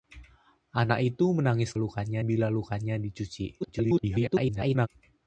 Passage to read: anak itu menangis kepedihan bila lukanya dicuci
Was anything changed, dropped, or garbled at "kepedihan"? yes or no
yes